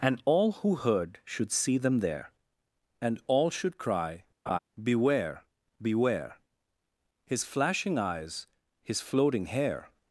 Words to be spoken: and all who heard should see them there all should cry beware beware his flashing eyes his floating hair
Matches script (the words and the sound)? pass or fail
fail